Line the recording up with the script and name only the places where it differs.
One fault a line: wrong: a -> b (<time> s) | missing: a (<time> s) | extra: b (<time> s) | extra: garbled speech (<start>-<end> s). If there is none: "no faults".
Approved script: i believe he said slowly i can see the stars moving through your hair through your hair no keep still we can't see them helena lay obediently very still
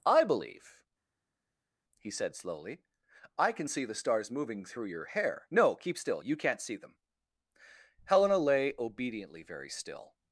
missing: through your hair (5.5 s)
wrong: we -> you (6.2 s)